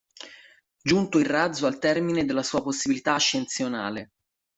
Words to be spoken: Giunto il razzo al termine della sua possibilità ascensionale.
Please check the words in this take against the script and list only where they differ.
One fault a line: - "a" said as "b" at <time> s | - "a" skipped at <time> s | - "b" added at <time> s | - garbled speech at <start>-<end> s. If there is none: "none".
none